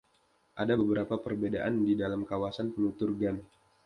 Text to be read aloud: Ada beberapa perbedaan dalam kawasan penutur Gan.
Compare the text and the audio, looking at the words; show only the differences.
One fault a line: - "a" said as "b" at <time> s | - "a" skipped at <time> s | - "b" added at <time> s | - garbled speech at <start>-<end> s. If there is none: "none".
- "di" added at 1.8 s